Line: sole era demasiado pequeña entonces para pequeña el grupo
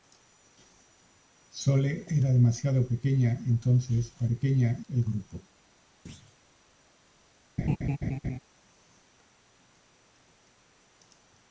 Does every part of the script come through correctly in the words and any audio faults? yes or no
no